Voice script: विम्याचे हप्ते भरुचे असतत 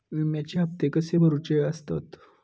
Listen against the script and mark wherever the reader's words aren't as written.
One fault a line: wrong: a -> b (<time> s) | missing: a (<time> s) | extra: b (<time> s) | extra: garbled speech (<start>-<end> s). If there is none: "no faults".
extra: कसे (0.9 s)